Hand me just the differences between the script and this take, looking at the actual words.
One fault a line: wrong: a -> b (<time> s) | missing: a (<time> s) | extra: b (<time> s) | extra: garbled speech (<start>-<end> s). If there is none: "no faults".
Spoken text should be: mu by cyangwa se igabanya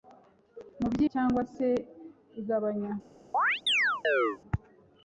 no faults